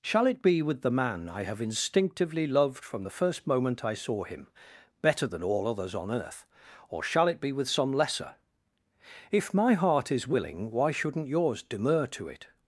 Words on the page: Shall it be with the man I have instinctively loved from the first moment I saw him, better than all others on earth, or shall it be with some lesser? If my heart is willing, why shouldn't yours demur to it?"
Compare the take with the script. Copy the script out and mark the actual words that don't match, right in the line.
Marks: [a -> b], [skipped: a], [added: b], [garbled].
Shall it be with the man I have instinctively loved from the first moment I saw him, better than all others on earth, or shall it be with some lesser? If my heart is willing, why shouldn't yours demur to it?"